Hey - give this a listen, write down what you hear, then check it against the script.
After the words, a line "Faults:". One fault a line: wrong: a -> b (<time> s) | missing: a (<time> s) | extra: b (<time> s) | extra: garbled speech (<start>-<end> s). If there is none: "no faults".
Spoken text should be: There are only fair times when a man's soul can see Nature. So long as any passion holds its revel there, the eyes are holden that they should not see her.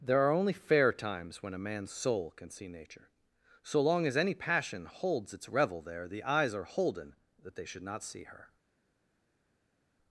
There are only fair times when a man's soul can see Nature. So long as any passion holds its revel there, the eyes are holden that they should not see her.
Faults:
no faults